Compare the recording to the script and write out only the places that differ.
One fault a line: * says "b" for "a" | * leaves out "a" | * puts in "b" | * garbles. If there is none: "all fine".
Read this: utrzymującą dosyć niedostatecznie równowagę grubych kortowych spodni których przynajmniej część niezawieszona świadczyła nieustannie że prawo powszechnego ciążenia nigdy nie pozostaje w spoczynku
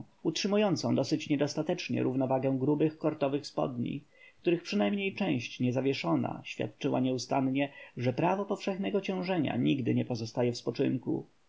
all fine